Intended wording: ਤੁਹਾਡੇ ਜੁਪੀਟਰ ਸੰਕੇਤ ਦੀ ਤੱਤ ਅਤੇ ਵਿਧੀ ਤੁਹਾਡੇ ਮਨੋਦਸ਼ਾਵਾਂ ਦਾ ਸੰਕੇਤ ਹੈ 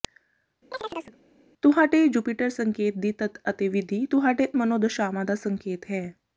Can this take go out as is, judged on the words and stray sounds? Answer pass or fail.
fail